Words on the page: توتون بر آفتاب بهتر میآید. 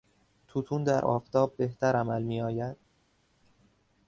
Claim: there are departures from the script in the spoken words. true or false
true